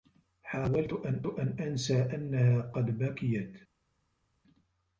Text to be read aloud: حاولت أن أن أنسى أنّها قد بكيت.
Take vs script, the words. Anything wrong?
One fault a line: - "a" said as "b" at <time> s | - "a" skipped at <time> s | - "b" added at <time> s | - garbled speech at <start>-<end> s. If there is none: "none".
none